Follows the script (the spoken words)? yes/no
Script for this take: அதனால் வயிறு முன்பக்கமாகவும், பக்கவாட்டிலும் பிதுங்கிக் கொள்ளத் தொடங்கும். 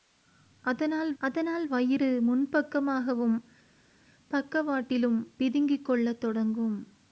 no